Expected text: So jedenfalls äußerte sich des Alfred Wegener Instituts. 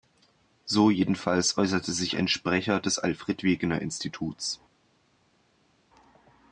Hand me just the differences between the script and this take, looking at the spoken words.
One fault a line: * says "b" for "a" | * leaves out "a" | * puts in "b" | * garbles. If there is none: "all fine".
* puts in "ein Sprecher"